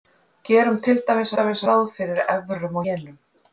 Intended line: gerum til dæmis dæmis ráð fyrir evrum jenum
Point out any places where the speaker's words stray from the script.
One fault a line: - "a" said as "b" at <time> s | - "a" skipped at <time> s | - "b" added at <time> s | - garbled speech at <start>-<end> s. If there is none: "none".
none